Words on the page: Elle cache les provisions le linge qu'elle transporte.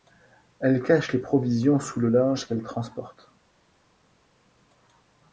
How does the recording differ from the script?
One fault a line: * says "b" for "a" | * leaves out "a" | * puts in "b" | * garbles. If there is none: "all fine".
* puts in "sous"